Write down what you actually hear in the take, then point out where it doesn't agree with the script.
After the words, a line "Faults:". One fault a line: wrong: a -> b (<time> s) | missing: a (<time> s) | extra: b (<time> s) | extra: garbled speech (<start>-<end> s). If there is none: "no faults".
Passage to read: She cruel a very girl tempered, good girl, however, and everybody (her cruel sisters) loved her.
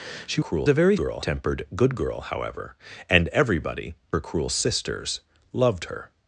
She cruel a very girl tempered, good girl, however, and everybody (her cruel sisters) loved her.
Faults:
no faults